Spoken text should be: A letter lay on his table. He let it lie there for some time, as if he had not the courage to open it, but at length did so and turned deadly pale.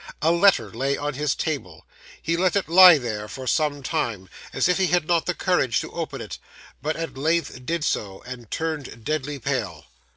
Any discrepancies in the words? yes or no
no